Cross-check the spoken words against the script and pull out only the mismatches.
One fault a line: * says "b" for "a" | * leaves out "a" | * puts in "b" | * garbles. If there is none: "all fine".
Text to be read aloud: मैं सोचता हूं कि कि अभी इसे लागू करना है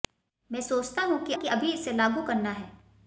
all fine